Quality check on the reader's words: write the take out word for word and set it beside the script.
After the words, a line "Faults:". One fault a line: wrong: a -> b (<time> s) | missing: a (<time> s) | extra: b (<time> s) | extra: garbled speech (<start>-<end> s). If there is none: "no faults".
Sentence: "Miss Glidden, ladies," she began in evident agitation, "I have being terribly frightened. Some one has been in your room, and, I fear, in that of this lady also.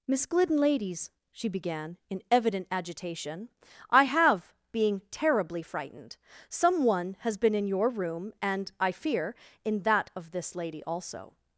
"Miss Glidden, ladies," she began in evident agitation, "I have being terribly frightened. Some one has been in your room, and, I fear, in that of this lady also.
Faults:
no faults